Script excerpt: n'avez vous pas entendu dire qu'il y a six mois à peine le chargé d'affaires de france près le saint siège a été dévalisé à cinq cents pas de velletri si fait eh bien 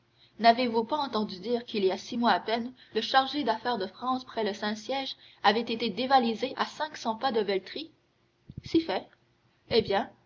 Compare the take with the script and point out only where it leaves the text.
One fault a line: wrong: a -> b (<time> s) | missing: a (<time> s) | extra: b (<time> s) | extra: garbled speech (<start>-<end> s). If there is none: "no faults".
wrong: a -> avait (5.4 s)